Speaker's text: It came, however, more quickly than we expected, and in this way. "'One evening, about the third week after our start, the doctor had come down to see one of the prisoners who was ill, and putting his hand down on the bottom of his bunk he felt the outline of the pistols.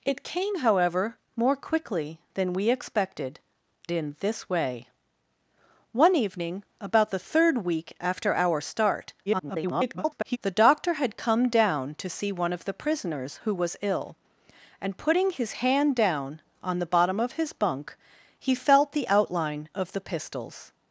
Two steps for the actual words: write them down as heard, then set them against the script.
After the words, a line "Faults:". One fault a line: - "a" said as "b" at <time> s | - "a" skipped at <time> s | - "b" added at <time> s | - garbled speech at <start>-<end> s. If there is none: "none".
It came, however, more quickly than we expected, in this way. "'One evening, about the third week after our start, [garbled] the doctor had come down to see one of the prisoners who was ill, and putting his hand down on the bottom of his bunk he felt the outline of the pistols.
Faults:
- "and" skipped at 3.4 s
- garbled speech at 9.3-10.4 s